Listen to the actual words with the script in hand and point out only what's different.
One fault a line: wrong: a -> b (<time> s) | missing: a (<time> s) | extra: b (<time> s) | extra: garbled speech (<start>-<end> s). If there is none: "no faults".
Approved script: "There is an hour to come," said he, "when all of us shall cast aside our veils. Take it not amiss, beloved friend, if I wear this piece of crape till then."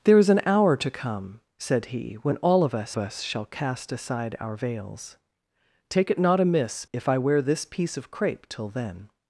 extra: us (3.0 s)
missing: beloved friend (6.8 s)